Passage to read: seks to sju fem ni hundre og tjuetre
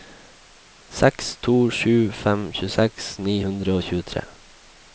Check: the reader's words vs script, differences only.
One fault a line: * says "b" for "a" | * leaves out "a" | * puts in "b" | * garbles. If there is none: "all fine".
* puts in "tjueseks"